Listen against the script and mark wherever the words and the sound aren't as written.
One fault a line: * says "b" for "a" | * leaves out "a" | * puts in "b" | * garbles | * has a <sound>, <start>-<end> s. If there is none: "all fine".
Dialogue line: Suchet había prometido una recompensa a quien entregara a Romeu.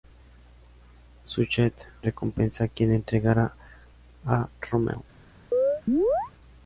* leaves out "había prometido una"
* has a chirp, 5.5-6.3 s